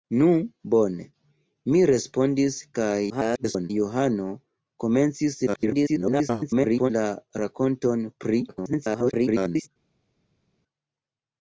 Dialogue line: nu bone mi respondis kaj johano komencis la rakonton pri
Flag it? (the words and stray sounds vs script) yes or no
yes